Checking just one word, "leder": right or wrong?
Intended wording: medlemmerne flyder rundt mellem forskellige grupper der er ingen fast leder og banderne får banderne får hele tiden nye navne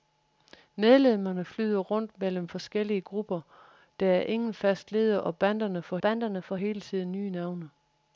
right